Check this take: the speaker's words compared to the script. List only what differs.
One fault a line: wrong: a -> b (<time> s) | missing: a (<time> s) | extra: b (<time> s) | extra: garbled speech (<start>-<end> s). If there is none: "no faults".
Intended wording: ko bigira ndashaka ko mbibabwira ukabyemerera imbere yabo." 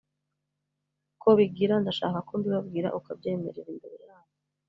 no faults